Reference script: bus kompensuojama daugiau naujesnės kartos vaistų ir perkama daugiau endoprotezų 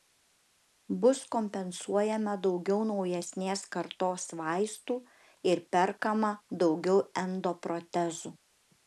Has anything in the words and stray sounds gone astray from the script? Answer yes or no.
no